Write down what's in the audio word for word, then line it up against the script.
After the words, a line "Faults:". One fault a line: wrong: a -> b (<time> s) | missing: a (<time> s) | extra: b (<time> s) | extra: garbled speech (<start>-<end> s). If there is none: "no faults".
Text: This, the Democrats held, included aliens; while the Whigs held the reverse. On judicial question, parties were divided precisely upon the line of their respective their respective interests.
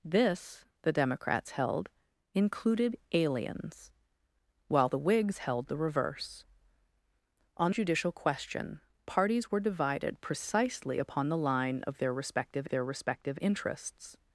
This, the Democrats held, included aliens; while the Whigs held the reverse. On judicial question, parties were divided precisely upon the line of their respective their respective interests.
Faults:
no faults